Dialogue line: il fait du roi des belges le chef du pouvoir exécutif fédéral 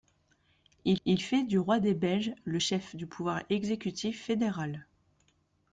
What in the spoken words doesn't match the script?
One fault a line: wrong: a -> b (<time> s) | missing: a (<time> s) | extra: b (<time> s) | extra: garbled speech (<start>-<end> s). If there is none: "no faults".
extra: il (1.0 s)